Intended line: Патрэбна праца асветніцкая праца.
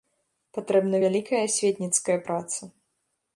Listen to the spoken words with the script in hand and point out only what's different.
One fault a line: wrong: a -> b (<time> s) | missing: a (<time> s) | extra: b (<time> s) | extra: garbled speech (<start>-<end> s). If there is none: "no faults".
wrong: праца -> вялікая (1.0 s)